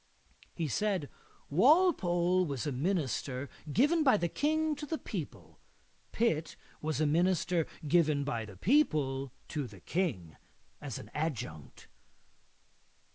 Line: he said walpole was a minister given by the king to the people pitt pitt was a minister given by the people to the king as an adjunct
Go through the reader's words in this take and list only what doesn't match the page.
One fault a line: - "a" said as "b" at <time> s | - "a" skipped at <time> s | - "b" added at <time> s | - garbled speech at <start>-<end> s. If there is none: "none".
- "pitt" skipped at 6.5 s